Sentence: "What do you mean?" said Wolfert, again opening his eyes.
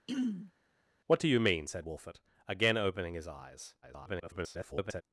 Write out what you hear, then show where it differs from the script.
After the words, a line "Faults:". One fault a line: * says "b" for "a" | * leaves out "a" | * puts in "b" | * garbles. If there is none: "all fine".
"What do you mean?" said Wolfert, again opening his eyes. [garbled]
Faults:
* garbles